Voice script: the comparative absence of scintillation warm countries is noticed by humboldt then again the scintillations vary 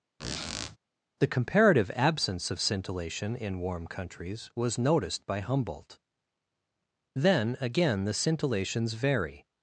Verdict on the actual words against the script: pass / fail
fail